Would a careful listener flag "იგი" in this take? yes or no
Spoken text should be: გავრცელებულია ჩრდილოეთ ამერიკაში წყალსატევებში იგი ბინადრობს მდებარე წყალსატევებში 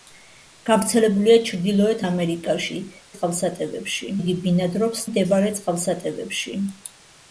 no